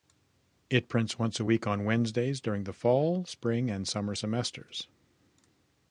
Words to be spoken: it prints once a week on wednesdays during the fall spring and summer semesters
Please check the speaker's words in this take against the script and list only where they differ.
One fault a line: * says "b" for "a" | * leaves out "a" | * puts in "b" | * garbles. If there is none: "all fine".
all fine